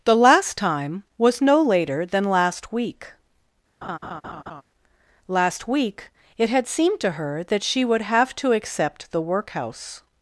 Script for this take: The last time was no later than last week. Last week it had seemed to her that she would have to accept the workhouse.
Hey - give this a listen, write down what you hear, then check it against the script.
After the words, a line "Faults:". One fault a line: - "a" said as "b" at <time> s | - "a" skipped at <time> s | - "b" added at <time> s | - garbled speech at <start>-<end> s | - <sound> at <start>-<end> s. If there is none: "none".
The last time was no later than last week. Last week it had seemed to her that she would have to accept the workhouse.
Faults:
- laugh at 3.8-4.6 s